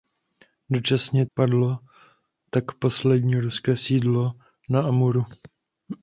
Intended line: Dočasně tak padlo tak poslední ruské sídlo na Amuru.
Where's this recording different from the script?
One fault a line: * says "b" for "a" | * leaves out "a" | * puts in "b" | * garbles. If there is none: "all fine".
* leaves out "tak"